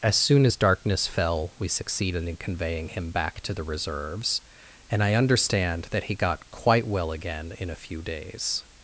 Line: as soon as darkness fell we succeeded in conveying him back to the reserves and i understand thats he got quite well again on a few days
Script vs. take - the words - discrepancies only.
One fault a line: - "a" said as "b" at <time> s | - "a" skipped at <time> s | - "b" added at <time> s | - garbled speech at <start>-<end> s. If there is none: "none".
- "thats" said as "that" at 5.9 s
- "on" said as "in" at 7.6 s